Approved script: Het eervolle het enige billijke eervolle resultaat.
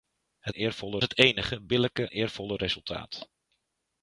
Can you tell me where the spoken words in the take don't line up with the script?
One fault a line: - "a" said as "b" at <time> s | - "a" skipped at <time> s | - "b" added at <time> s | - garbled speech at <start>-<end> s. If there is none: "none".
none